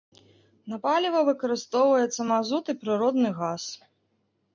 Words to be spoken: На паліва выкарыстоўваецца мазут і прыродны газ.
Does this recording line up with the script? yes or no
yes